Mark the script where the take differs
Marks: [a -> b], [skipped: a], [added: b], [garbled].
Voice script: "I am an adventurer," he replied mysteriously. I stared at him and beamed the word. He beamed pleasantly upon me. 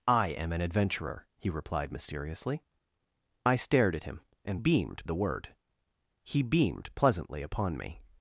"I am an adventurer," he replied mysteriously. I stared at him and beamed the word. He beamed pleasantly upon me.